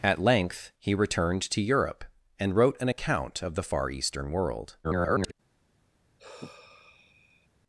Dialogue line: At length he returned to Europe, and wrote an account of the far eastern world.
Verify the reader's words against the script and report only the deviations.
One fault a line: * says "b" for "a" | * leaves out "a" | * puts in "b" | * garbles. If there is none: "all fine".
* garbles